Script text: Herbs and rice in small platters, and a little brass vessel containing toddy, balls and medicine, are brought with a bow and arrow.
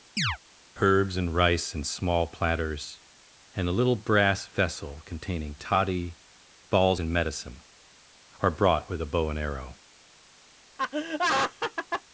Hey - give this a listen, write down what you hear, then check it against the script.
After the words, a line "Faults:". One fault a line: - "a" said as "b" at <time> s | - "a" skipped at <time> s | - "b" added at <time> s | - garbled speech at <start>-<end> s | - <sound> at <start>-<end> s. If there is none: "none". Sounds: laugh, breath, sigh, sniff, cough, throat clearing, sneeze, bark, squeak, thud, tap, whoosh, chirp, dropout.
Herbs and rice in small platters, and a little brass vessel containing toddy, balls and medicine, are brought with a bow and arrow.
Faults:
- chirp at 0.2-0.4 s
- laugh at 10.8-12.0 s